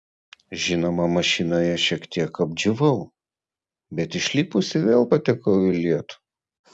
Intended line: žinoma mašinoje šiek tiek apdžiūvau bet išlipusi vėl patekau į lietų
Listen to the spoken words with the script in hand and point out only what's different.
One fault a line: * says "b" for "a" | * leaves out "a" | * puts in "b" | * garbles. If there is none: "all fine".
all fine